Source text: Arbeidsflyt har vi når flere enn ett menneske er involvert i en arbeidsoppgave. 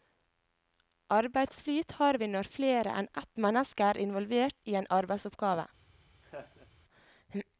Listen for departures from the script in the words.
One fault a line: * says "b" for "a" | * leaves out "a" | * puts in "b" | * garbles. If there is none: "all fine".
all fine